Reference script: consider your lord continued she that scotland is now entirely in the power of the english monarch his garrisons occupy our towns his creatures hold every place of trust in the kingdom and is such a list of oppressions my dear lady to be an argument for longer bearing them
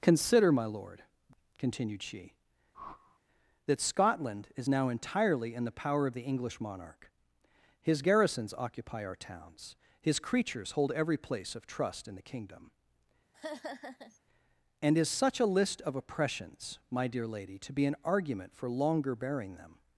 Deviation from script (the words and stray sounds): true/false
true